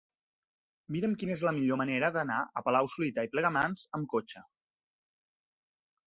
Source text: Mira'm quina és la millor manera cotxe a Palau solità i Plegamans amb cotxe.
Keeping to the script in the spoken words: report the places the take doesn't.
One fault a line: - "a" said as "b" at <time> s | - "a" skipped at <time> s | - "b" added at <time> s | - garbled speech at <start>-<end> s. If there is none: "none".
- "cotxe" said as "d'anar" at 2.2 s